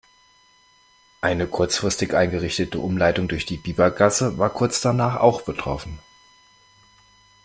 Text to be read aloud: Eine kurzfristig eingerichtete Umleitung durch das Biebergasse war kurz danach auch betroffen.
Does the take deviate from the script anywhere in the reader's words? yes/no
yes